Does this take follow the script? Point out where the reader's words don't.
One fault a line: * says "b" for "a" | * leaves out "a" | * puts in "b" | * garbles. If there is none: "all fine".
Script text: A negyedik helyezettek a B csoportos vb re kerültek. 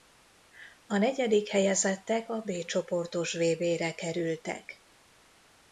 all fine